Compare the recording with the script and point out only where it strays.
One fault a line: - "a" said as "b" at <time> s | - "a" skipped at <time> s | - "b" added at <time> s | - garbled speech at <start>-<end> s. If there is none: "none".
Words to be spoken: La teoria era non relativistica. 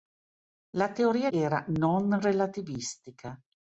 none